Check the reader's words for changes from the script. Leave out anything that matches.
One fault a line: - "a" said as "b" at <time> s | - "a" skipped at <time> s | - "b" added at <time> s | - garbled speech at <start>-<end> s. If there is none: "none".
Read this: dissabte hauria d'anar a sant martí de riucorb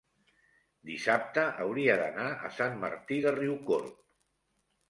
none